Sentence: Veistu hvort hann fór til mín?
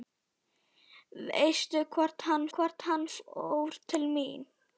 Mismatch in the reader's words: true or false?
true